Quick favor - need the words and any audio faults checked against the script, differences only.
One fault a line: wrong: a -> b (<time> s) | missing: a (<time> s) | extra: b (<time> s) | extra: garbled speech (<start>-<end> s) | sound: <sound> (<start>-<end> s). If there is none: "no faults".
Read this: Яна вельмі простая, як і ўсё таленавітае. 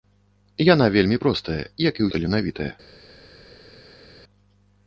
missing: ўсё (2.1 s)